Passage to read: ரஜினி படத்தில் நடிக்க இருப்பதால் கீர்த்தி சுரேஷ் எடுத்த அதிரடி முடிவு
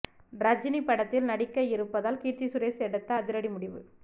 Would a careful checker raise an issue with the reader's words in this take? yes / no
no